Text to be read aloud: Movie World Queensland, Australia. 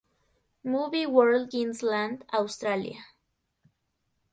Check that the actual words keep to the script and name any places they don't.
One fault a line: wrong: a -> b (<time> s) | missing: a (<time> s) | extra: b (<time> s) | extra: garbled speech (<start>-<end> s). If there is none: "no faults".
no faults